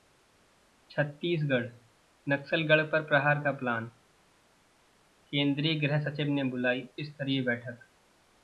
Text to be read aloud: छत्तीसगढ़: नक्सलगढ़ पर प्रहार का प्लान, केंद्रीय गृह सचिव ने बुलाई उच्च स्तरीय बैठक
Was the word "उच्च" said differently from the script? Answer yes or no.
yes